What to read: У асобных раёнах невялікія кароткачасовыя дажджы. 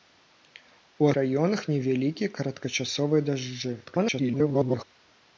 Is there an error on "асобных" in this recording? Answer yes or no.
yes